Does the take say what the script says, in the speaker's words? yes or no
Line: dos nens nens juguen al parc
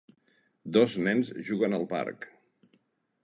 no